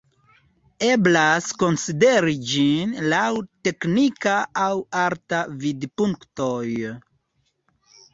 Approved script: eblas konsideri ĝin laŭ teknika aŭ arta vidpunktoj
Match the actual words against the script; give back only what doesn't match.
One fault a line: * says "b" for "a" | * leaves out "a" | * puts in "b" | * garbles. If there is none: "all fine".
all fine